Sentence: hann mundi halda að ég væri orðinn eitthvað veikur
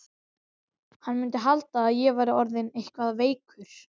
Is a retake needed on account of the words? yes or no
no